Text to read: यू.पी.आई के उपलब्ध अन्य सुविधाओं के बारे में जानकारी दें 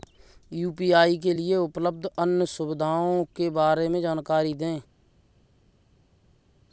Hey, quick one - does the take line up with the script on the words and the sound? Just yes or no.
no